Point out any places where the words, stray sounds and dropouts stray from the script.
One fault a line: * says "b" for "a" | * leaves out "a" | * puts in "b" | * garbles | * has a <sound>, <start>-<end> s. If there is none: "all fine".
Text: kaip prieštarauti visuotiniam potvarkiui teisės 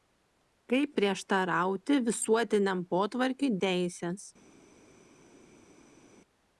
all fine